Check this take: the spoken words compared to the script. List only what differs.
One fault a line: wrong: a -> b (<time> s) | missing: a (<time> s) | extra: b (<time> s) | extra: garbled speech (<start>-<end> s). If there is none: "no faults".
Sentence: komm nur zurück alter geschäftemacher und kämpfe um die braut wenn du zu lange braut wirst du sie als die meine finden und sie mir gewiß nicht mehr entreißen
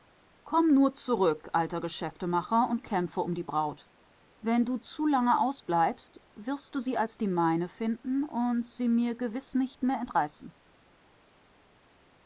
wrong: braut -> ausbleibst (5.4 s)